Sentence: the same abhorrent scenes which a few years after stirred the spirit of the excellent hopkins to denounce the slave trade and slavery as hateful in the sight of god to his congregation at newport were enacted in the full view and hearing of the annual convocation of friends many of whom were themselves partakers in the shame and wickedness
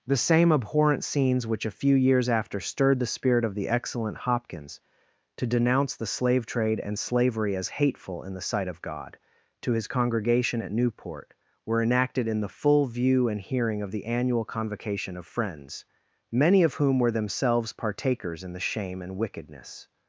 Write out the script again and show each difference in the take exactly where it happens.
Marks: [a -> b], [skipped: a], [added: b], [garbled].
the same abhorrent scenes which a few years after stirred the spirit of the excellent hopkins to denounce the slave trade and slavery as hateful in the sight of god to his congregation at newport were enacted in the full view and hearing of the annual convocation of friends many of whom were themselves partakers in the shame and wickedness